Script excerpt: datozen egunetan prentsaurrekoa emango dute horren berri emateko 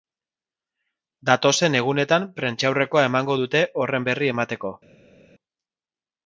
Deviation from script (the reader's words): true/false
false